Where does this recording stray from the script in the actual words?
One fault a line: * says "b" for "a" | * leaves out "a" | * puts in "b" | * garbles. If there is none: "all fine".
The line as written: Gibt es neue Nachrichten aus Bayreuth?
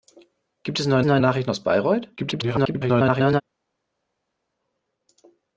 * puts in "neue"
* garbles